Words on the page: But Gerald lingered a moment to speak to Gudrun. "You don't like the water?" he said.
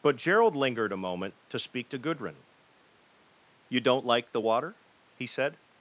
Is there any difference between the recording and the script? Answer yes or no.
no